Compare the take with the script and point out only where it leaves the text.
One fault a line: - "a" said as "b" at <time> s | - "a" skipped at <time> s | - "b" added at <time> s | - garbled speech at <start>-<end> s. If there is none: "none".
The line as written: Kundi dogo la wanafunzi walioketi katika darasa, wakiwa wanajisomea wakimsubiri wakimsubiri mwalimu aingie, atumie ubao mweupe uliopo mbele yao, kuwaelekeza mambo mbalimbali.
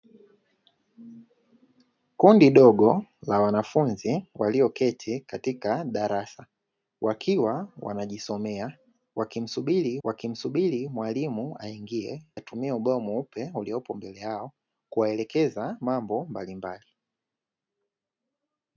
none